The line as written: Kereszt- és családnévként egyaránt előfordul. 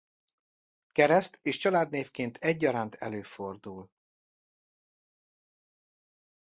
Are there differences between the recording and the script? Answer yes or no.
no